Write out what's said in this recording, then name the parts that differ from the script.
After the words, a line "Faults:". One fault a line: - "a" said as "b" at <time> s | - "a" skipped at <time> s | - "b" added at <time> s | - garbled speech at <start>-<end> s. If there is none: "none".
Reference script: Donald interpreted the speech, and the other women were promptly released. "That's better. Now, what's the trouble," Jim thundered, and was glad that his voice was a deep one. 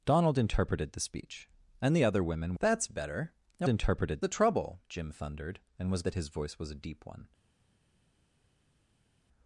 Donald interpreted the speech, and the other women. "That's better. Now, interpreted the trouble," Jim thundered, and was that his voice was a deep one.
Faults:
- "were promptly released" skipped at 2.5 s
- "what's" said as "interpreted" at 3.7 s
- "glad" skipped at 6.0 s